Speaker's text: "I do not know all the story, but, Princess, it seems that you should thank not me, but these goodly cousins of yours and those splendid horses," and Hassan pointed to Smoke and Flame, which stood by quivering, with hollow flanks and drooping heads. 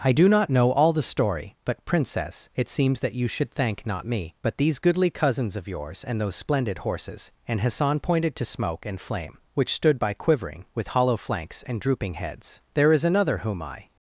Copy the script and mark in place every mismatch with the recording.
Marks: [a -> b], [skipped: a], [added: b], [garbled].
"I do not know all the story, but, Princess, it seems that you should thank not me, but these goodly cousins of yours and those splendid horses," and Hassan pointed to Smoke and Flame, which stood by quivering, with hollow flanks and drooping heads. [added: There is another whom I]